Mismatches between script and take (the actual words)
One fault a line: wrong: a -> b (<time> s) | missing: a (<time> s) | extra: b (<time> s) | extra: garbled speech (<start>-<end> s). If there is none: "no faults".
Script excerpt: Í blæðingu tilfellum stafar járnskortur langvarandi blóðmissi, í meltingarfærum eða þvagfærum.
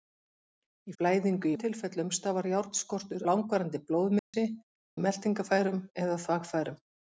no faults